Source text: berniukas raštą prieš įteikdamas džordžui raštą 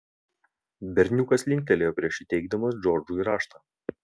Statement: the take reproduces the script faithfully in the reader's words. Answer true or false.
false